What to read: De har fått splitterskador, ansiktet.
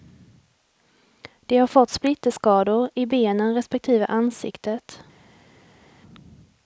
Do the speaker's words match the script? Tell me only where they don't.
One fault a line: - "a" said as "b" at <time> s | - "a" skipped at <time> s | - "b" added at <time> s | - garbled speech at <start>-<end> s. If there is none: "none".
- "i benen respektive" added at 2.9 s